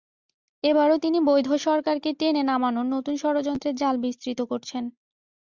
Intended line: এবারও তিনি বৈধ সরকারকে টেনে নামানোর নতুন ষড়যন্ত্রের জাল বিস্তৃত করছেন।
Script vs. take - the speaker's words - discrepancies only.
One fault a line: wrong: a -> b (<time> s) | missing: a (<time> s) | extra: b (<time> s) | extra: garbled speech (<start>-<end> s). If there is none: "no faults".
no faults